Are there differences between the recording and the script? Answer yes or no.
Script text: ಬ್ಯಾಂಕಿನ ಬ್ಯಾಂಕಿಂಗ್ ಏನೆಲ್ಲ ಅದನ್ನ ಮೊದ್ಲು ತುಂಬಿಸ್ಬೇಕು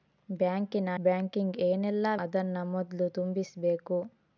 no